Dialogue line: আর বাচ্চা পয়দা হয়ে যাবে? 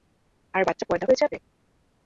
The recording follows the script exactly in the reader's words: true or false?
true